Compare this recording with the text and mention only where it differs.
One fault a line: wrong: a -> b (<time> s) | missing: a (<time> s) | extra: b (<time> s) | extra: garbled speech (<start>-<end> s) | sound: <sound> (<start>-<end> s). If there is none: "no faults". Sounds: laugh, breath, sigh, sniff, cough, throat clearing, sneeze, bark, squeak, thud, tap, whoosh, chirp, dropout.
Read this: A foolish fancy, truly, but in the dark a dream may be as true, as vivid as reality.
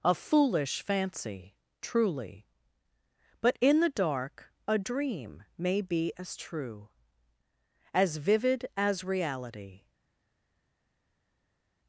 no faults